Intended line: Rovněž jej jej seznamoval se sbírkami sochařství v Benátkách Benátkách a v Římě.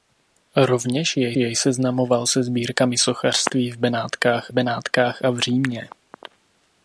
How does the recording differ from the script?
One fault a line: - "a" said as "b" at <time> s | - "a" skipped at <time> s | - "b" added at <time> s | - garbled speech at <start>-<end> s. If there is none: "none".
none